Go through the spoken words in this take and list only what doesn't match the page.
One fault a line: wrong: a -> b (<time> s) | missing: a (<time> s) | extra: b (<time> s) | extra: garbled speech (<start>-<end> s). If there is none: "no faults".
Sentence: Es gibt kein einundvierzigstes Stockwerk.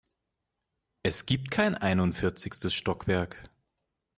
no faults